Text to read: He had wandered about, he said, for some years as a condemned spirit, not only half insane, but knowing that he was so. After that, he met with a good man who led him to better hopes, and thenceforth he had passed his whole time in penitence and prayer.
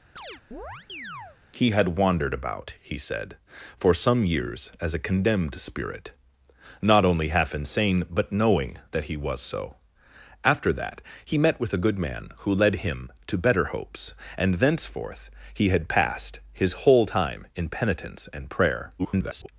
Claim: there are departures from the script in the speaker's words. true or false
true